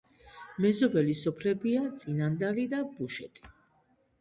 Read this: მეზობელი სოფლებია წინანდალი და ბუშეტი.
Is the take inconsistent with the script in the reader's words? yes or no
no